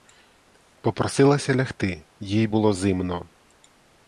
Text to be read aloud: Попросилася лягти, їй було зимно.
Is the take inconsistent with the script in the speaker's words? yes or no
no